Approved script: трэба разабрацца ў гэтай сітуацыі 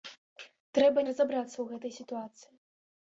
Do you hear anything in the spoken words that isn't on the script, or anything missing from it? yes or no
no